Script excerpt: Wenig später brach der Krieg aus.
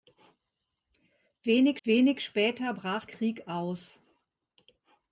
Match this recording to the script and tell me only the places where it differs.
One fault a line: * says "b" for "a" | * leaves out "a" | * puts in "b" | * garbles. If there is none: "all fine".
* puts in "wenig"
* leaves out "der"